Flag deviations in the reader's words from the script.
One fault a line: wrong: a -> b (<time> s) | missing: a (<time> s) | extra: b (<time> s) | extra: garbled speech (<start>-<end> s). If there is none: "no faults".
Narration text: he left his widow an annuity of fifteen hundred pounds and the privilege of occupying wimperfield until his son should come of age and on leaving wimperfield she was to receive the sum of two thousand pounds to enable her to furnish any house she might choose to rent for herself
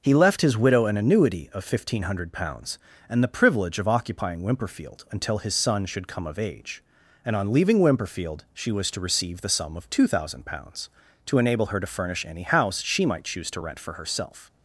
no faults